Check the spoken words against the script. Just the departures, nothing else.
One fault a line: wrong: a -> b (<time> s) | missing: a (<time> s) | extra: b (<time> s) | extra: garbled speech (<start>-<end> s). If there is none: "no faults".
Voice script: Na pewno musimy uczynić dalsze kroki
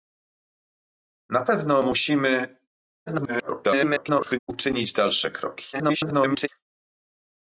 extra: garbled speech (3.1-4.4 s)
extra: garbled speech (5.7-6.5 s)